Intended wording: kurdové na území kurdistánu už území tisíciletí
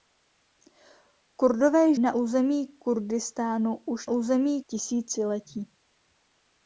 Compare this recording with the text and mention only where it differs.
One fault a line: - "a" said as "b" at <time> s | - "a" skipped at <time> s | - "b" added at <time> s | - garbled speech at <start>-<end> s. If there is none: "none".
none